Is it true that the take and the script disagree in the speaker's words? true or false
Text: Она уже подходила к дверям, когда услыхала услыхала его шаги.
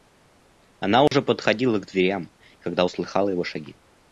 true